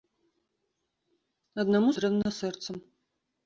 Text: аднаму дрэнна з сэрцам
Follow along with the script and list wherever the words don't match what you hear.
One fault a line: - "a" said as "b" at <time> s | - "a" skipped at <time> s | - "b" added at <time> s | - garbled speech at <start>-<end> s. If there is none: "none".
none